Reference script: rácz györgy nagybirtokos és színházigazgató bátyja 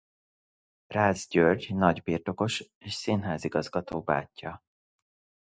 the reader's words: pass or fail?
pass